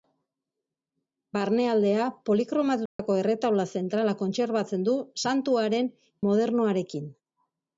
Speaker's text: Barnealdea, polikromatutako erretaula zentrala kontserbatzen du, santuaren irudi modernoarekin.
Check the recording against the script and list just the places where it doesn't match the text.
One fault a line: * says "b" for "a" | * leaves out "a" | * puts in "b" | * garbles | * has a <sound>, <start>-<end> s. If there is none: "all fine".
* has a dropout, 2.9-3.0 s
* leaves out "irudi"